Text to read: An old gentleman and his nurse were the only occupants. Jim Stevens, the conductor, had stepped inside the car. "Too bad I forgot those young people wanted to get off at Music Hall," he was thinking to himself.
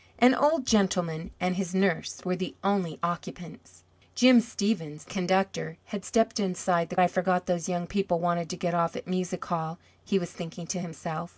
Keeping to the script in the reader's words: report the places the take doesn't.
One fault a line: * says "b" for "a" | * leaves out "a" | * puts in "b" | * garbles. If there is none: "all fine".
* leaves out "the"
* leaves out "car Too bad"